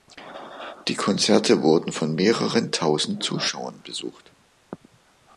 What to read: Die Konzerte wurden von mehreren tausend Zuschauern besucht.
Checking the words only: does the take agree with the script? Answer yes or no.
yes